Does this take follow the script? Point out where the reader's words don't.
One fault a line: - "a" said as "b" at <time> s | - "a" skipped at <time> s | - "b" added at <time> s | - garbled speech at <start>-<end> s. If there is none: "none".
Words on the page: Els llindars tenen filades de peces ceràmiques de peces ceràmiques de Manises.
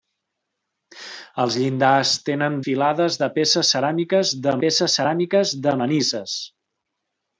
none